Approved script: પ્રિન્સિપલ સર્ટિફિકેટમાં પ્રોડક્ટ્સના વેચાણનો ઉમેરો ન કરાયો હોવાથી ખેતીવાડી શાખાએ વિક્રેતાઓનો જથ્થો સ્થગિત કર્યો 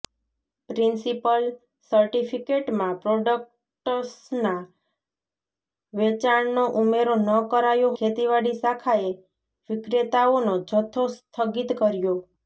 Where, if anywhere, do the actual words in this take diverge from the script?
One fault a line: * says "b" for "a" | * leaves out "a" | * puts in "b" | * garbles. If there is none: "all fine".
* leaves out "હોવાથી"